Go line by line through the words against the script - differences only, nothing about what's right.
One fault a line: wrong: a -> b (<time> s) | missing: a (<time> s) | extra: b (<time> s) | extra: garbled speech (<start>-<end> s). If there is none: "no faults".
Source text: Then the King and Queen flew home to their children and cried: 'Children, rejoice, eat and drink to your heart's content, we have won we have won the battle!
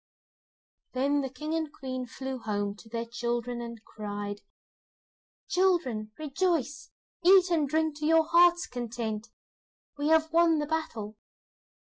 missing: we have won (10.6 s)